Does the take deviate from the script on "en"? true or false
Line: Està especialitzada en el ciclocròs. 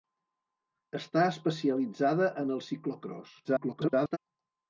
false